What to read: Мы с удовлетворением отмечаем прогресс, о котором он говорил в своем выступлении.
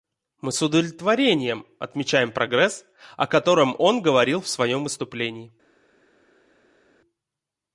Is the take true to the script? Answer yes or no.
yes